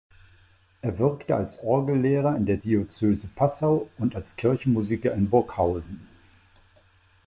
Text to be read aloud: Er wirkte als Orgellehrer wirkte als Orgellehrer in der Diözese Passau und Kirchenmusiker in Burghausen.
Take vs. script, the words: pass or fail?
fail